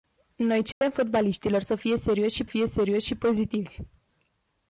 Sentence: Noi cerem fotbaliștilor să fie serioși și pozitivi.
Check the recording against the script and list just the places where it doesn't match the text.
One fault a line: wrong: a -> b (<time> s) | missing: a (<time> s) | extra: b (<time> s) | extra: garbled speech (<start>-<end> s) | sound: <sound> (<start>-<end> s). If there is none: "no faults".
sound: dropout (0.7-0.8 s)
extra: fie serioși și (2.4 s)